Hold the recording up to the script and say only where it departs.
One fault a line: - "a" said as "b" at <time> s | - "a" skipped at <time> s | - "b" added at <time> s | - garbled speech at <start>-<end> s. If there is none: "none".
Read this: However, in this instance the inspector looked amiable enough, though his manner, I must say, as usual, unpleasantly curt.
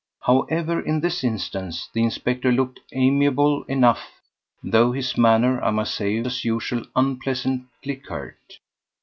none